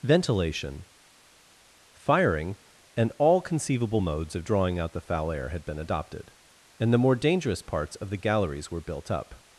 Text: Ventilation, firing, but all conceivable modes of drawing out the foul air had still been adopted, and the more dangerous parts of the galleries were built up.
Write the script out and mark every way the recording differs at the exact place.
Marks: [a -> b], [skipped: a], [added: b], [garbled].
Ventilation, firing, [but -> and] all conceivable modes of drawing out the foul air had [skipped: still] been adopted, and the more dangerous parts of the galleries were built up.